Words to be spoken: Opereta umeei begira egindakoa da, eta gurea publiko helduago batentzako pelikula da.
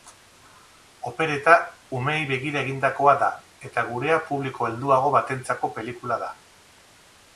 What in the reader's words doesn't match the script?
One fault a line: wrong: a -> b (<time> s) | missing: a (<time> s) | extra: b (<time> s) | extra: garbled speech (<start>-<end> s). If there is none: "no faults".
no faults